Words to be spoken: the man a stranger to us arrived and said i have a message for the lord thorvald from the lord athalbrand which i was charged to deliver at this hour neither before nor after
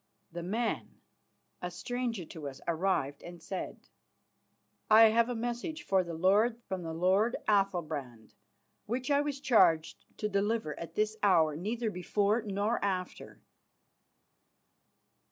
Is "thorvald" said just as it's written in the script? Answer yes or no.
no